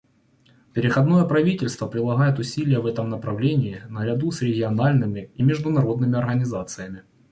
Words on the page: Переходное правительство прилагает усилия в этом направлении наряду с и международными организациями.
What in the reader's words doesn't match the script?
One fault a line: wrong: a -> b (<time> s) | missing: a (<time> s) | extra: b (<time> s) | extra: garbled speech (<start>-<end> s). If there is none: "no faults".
extra: региональными (4.4 s)